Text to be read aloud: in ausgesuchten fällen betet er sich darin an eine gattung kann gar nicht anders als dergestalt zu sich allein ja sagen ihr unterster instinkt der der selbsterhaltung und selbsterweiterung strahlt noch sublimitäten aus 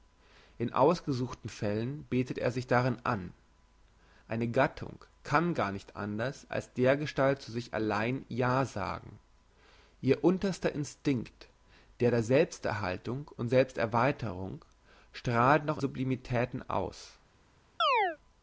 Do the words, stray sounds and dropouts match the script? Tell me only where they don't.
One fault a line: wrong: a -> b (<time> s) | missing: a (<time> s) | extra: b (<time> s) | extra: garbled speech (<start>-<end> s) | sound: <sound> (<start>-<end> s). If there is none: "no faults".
sound: chirp (17.8-18.2 s)